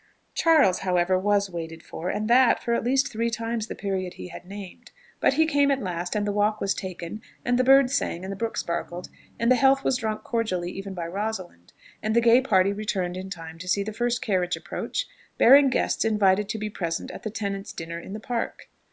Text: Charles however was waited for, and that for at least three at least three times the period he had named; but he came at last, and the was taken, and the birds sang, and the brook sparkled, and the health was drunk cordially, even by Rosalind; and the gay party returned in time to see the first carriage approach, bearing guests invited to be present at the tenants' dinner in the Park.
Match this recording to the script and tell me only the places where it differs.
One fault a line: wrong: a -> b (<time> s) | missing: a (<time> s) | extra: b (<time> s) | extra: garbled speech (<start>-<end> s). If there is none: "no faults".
missing: at least three (3.3 s)
extra: walk (6.3 s)